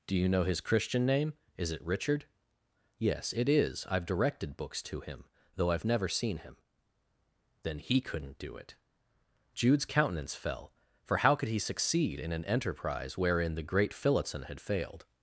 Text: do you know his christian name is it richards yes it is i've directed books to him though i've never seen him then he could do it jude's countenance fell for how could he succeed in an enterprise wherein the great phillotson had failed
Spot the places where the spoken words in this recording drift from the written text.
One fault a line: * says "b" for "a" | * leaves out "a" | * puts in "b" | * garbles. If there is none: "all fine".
* says "richard" for "richards"
* says "couldn't" for "could"